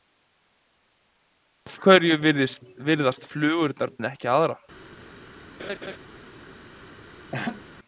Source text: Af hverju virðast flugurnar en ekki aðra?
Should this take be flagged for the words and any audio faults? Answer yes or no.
yes